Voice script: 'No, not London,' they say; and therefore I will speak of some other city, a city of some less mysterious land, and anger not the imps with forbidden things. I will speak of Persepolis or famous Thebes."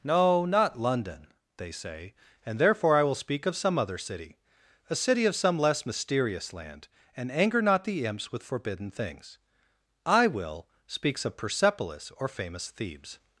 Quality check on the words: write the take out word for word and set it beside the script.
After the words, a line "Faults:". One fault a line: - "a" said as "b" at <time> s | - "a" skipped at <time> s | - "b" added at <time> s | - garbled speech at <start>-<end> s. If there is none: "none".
'No, not London,' they say; and therefore I will speak of some other city, a city of some less mysterious land, and anger not the imps with forbidden things. I will speaks of Persepolis or famous Thebes."
Faults:
- "speak" said as "speaks" at 10.9 s